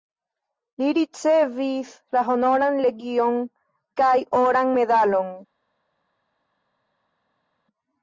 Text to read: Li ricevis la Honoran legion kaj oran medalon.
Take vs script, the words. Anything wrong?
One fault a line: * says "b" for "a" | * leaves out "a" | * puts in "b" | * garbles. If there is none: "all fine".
all fine